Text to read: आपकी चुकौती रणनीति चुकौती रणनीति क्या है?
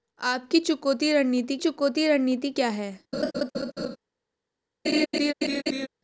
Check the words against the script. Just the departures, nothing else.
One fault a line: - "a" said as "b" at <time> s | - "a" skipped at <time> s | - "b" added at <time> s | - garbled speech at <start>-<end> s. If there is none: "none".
none